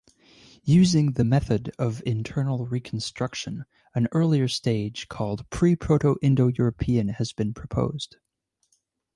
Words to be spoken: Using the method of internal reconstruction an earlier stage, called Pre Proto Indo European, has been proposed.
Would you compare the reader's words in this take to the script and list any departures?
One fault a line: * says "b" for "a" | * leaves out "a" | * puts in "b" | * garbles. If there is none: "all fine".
all fine